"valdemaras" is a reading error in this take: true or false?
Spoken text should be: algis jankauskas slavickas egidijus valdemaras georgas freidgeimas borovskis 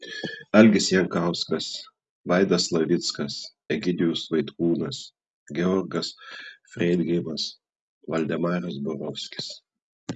true